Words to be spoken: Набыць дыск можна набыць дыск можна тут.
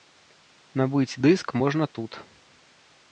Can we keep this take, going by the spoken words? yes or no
no